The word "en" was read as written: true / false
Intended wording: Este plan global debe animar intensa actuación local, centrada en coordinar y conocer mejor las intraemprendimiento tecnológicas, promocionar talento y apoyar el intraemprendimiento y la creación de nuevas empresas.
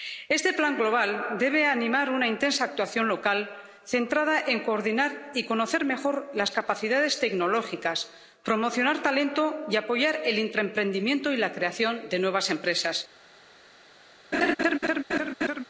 true